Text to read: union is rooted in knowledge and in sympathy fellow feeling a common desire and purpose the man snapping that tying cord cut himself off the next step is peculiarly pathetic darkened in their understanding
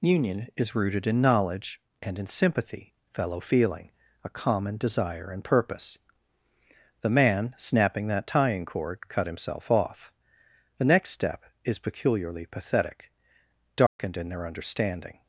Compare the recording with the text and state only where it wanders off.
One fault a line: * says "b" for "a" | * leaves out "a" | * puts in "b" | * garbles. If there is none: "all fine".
all fine